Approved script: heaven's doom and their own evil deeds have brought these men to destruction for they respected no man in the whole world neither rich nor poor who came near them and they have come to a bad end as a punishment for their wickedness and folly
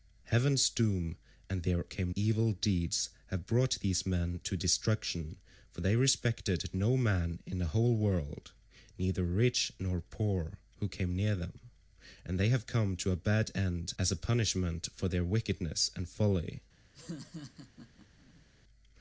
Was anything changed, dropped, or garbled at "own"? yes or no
yes